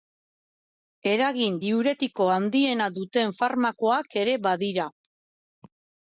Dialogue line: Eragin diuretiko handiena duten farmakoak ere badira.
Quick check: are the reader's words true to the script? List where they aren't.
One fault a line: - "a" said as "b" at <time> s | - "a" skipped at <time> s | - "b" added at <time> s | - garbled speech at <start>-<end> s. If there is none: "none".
none